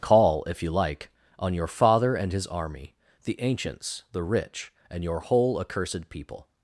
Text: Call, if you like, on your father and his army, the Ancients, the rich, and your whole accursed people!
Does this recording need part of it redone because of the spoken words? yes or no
no